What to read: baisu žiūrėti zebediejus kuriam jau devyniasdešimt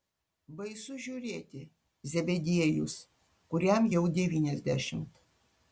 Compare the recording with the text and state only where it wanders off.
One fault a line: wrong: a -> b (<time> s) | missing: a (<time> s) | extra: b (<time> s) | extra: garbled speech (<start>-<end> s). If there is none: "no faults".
no faults